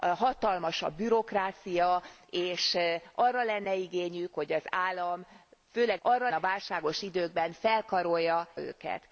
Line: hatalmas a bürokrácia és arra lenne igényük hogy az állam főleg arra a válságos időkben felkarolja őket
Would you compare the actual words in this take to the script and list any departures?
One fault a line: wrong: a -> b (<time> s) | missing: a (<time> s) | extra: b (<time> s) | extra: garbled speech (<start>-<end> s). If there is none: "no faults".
no faults